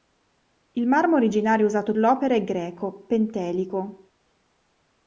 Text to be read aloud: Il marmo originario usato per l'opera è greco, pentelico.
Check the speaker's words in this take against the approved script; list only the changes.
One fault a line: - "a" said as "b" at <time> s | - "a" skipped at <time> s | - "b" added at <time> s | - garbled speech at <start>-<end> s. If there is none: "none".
- "per" skipped at 1.9 s